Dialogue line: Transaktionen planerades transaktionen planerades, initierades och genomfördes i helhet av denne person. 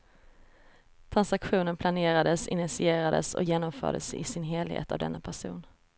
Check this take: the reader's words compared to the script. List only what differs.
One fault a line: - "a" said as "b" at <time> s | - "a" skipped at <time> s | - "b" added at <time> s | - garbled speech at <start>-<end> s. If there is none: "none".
- "transaktionen planerades" skipped at 2.5 s
- "sin" added at 4.2 s